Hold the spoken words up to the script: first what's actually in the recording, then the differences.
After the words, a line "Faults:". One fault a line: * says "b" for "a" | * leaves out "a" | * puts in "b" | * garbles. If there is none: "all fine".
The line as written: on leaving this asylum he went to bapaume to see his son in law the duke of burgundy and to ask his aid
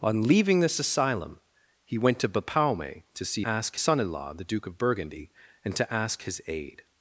on leaving this asylum he went to bapaume to see ask son in law the duke of burgundy and to ask his aid
Faults:
* says "ask" for "his"